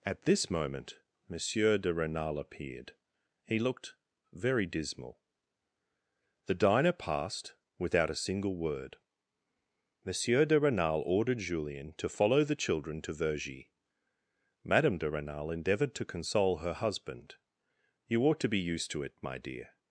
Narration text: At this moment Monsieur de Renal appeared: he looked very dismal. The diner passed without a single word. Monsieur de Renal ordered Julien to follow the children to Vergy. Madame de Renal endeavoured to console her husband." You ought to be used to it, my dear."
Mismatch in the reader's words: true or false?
false